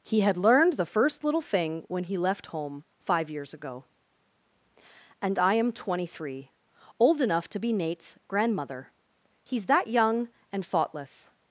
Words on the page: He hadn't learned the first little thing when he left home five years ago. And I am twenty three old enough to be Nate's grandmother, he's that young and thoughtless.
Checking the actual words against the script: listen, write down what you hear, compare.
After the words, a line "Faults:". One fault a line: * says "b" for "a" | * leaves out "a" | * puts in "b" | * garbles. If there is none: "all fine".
He had learned the first little thing when he left home five years ago. And I am twenty three old enough to be Nate's grandmother, he's that young and thoughtless.
Faults:
* says "had" for "hadn't"